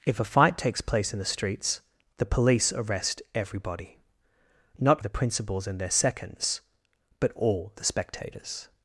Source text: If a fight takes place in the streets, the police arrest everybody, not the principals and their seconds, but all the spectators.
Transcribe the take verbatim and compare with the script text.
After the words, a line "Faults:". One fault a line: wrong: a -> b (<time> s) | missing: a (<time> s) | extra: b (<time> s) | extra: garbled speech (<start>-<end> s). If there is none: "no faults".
If a fight takes place in the streets, the police arrest everybody, not the principals and their seconds, but all the spectators.
Faults:
no faults